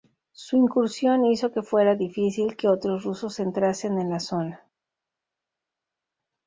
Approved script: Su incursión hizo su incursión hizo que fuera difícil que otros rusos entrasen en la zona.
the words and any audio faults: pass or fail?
fail